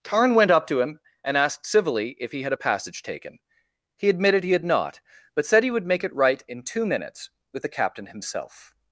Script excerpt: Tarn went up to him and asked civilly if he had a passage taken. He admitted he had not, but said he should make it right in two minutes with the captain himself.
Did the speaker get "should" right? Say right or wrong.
wrong